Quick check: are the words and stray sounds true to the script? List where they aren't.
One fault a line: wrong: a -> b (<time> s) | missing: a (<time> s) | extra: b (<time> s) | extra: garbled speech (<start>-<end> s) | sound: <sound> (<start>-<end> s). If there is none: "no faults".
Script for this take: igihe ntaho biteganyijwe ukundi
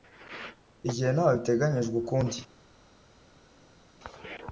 no faults